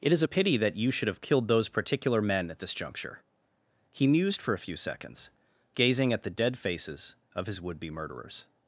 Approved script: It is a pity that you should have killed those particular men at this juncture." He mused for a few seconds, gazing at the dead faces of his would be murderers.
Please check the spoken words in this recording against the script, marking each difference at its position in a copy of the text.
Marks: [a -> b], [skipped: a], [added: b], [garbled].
It is a pity that you should have killed those particular men at this juncture." He mused for a few seconds, gazing at the dead faces of his would be murderers.